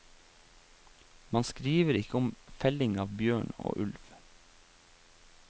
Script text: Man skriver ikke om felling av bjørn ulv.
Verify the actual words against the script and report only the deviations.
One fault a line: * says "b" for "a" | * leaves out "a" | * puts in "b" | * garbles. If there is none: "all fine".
* puts in "og"